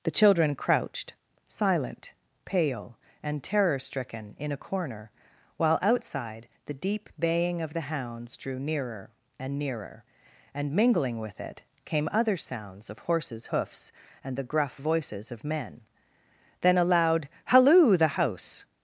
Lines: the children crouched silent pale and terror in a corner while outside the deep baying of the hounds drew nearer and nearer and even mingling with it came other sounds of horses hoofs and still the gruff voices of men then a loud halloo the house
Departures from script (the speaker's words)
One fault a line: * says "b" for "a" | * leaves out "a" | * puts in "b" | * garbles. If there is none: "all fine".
* puts in "stricken"
* leaves out "even"
* leaves out "still"